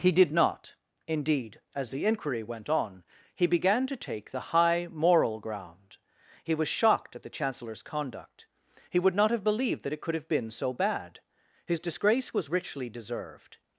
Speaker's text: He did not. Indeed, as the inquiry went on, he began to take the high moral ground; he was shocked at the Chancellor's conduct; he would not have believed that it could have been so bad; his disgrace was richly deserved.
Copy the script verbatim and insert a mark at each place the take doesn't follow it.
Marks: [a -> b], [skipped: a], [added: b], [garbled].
He did not. Indeed, as the inquiry went on, he began to take the high moral ground; he was shocked at the Chancellor's conduct; he would not have believed that it could have been so bad; his disgrace was richly deserved.